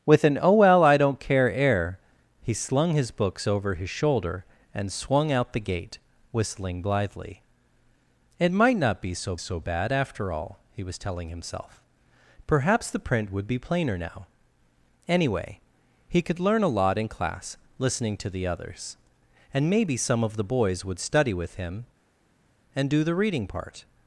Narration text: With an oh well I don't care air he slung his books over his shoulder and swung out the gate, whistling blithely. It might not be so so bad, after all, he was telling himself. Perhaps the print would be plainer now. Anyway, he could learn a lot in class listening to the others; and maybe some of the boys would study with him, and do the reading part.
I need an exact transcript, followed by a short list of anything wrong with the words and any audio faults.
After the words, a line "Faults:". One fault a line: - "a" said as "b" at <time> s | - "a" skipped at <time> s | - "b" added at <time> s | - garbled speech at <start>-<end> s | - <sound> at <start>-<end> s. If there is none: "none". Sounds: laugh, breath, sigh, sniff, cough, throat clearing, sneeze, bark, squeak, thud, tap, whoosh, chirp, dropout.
With an oh well I don't care air he slung his books over his shoulder and swung out the gate, whistling blithely. It might not be so so bad, after all, he was telling himself. Perhaps the print would be plainer now. Anyway, he could learn a lot in class listening to the others; and maybe some of the boys would study with him, and do the reading part.
Faults:
none